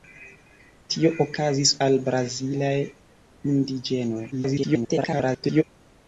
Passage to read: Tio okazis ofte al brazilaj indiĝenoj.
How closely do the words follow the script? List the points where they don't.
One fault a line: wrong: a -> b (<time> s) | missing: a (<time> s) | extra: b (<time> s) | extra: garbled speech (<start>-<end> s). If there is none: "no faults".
missing: ofte (1.7 s)
extra: garbled speech (4.3-5.6 s)